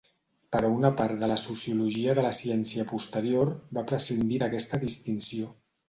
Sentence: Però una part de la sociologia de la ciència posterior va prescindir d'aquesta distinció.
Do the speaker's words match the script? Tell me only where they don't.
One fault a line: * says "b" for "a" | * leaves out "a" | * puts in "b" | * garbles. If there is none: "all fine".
all fine